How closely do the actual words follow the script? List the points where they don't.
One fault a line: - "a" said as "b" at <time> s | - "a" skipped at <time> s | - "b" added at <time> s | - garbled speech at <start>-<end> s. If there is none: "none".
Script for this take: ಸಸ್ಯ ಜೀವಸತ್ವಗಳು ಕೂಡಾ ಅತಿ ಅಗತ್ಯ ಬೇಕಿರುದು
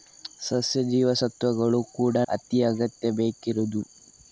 none